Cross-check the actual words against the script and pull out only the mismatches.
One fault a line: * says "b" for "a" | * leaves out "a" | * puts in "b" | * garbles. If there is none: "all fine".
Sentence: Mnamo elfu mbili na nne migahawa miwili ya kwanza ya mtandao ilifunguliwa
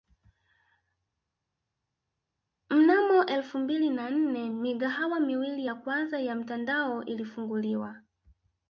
all fine